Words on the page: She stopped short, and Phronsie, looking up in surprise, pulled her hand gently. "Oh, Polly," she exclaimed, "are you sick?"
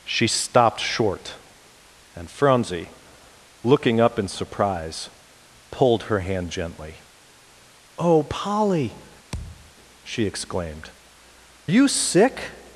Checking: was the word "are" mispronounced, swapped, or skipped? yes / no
yes